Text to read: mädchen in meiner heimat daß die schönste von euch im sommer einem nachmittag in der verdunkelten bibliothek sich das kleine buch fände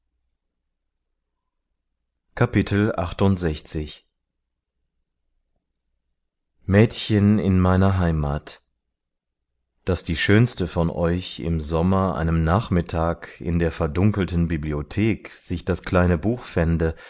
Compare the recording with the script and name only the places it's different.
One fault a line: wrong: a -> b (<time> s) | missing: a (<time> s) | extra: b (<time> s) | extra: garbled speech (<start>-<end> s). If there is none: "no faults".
no faults